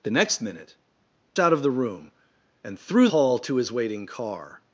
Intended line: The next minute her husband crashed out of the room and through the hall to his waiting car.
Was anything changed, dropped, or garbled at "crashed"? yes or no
yes